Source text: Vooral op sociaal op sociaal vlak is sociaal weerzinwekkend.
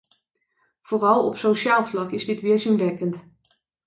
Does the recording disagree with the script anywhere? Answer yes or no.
yes